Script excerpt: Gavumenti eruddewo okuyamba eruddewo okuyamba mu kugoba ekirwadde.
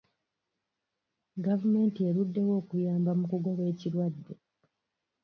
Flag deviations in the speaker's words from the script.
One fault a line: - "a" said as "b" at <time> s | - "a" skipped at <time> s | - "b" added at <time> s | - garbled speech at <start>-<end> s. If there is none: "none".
- "eruddewo okuyamba" skipped at 3.1 s